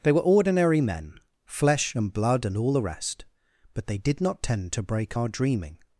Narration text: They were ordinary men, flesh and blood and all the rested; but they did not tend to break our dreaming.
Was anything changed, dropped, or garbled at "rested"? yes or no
yes